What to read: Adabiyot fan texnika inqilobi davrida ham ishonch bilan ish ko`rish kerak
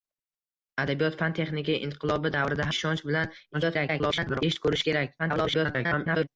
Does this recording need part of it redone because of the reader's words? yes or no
yes